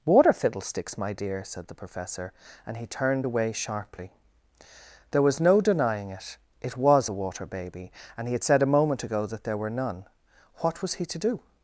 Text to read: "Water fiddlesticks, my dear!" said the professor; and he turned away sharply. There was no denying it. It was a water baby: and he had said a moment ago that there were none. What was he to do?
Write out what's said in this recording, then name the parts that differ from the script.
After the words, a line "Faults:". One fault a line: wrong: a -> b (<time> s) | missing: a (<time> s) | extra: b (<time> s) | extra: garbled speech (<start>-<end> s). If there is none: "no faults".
"Water fiddlesticks, my dear!" said the professor; and he turned away sharply. There was no denying it. It was a water baby: and he had said a moment ago that there were none. What was he to do?
Faults:
no faults